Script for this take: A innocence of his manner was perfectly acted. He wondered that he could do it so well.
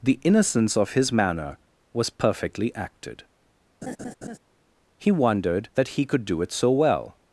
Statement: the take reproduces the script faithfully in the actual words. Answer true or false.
false